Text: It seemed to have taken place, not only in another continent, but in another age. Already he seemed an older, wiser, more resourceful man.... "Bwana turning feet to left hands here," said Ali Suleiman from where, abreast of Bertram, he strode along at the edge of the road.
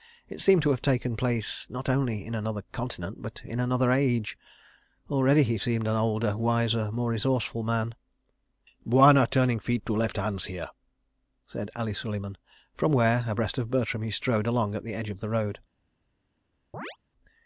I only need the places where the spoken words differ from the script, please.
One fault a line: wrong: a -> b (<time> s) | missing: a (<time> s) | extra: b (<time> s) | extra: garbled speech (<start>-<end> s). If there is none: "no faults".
no faults